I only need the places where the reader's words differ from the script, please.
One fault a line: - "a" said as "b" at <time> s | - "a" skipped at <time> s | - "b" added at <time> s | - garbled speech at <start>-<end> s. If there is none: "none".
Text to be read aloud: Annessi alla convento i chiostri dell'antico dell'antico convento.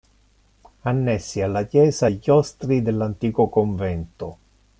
- "convento" said as "chiesa" at 1.6 s
- "dell'antico" skipped at 3.5 s